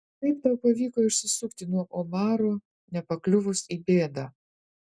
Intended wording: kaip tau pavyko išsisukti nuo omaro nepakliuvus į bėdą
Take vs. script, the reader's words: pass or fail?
pass